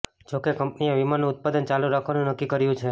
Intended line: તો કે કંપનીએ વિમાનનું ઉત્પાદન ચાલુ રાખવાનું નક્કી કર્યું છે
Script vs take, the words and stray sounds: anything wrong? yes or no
yes